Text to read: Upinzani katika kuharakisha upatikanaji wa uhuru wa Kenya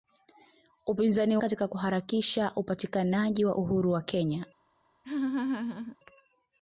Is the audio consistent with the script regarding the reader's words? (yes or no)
yes